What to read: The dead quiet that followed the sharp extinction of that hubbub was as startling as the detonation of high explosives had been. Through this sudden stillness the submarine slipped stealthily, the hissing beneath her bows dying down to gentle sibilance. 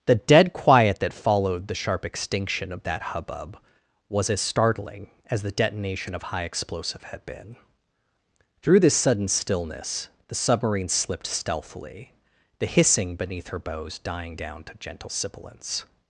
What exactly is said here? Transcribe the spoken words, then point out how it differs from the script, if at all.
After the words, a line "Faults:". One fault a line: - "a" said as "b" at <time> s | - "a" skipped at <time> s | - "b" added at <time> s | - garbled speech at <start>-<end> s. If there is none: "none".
The dead quiet that followed the sharp extinction of that hubbub was as startling as the detonation of high explosive had been. Through this sudden stillness the submarine slipped stealthily, the hissing beneath her bows dying down to gentle sibilance.
Faults:
- "explosives" said as "explosive" at 6.4 s